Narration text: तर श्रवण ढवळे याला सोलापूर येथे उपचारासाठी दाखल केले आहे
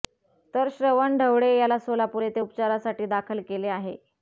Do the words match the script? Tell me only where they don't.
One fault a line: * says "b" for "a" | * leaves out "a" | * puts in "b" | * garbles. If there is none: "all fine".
all fine